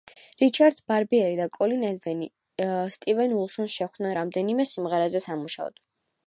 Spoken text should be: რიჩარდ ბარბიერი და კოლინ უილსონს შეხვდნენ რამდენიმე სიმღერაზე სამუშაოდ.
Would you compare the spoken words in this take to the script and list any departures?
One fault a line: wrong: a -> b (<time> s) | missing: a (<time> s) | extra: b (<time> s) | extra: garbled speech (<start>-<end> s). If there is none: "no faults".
extra: ედვინი სტივენ (1.9 s)